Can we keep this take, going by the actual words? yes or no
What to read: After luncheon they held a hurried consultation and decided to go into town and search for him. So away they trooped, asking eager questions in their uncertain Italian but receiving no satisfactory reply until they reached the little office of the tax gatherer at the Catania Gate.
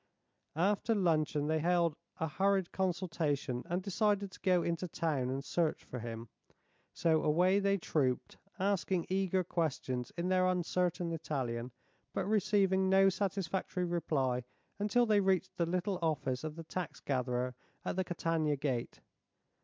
yes